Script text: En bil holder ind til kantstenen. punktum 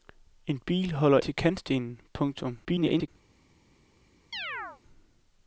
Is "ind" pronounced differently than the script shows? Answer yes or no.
yes